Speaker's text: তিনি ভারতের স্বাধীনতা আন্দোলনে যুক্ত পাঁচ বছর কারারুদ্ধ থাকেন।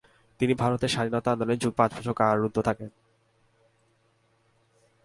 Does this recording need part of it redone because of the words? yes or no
no